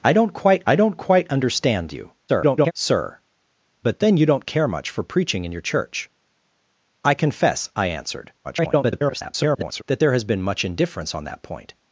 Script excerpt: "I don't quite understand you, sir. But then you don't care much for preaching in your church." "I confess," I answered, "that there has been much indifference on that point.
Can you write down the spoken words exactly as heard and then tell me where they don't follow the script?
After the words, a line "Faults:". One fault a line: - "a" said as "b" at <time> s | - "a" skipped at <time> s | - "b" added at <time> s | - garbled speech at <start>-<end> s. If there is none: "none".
"I don't quite I don't quite understand you, [garbled] sir. But then you don't care much for preaching in your church." "I confess," I answered, [garbled] "that there has been much indifference on that point.
Faults:
- "I don't quite" added at 0.7 s
- garbled speech at 2.3-2.7 s
- garbled speech at 8.4-9.8 s